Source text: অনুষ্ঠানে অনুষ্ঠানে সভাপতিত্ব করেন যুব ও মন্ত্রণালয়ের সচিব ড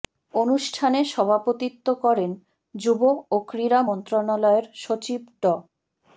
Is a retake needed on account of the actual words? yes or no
yes